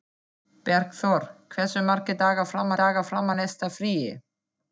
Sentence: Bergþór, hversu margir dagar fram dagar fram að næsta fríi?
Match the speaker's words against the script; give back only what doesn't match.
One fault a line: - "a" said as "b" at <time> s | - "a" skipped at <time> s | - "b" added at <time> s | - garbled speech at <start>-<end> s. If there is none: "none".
none